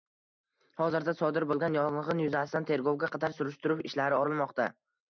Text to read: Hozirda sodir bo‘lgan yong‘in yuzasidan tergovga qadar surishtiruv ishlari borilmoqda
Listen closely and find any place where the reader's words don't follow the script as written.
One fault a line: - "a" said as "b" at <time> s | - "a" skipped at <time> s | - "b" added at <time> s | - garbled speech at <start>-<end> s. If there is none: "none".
none